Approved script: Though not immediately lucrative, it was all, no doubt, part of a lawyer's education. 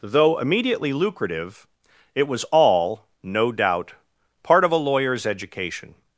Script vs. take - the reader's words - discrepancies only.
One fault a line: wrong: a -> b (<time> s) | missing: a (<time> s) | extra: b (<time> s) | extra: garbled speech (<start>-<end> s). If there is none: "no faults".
missing: not (0.4 s)